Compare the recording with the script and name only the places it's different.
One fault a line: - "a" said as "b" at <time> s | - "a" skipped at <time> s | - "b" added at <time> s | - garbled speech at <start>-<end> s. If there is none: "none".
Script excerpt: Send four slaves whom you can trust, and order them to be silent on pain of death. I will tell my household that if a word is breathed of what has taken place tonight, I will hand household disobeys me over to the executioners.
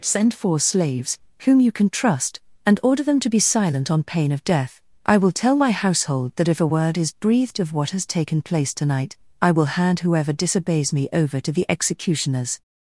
- "household" said as "whoever" at 10.0 s